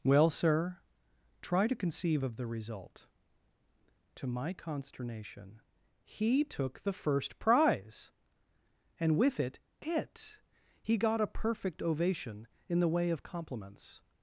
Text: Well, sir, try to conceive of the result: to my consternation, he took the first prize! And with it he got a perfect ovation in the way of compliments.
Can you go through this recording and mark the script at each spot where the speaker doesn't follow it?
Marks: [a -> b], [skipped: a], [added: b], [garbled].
Well, sir, try to conceive of the result: to my consternation, he took the first prize! And with it [added: it] he got a perfect ovation in the way of compliments.